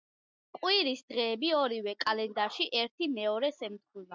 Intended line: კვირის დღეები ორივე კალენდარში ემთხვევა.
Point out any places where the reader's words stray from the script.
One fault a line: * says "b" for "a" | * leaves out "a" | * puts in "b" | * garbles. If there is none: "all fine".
* puts in "ერთი მეორეს"